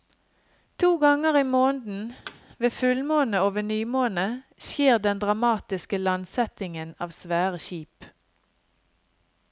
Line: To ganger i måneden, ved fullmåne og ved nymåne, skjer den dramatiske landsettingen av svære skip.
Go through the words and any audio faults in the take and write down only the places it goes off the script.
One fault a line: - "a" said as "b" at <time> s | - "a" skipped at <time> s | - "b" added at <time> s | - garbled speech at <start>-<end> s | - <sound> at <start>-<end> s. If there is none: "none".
- thud at 2.3-2.4 s